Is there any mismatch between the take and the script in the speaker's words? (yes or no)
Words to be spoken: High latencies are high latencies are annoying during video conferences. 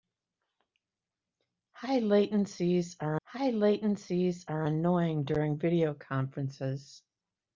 no